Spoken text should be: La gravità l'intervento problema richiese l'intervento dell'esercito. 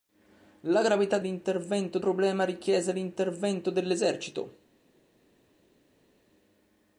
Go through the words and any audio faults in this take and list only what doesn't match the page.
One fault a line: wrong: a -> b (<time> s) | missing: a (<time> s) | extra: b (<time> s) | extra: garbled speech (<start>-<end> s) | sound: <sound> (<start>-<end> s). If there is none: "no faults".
no faults